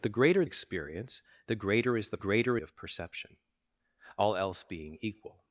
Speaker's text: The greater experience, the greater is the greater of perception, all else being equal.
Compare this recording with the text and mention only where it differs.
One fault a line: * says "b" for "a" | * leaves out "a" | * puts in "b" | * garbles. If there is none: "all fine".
all fine